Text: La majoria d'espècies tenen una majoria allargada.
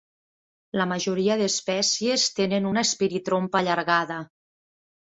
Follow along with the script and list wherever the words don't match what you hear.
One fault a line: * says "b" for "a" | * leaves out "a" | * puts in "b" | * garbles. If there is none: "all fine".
* says "espiritrompa" for "majoria"